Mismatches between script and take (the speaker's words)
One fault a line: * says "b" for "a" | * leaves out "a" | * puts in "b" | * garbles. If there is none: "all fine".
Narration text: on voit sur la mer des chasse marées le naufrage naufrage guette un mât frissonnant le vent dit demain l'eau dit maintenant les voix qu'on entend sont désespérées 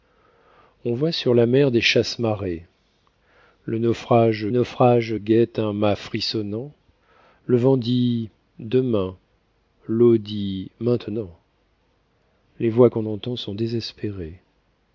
all fine